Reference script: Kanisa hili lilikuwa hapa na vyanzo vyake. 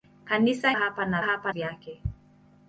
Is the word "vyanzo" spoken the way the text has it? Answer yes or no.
no